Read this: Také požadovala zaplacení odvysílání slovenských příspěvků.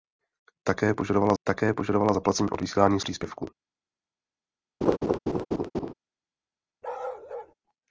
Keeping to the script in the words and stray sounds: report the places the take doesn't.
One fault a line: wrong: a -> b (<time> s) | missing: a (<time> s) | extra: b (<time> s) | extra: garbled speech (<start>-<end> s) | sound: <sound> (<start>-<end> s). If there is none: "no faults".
extra: také požadovala (1.4 s)
missing: slovenských (3.0 s)
sound: laugh (4.8-5.9 s)
sound: bark (6.8-7.5 s)